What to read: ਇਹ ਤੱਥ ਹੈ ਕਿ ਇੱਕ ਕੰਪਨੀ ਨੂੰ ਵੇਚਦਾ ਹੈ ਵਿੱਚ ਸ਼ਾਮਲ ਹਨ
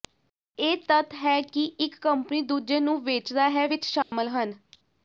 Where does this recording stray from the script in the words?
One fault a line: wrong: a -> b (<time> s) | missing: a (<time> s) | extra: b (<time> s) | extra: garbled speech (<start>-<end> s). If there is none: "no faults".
extra: ਦੂਜੇ (2.4 s)